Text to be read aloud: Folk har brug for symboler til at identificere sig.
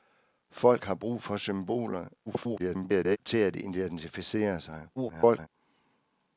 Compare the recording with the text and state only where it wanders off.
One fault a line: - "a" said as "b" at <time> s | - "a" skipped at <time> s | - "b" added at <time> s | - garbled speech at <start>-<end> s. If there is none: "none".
- garbled speech at 2.3-3.2 s
- garbled speech at 5.0-5.5 s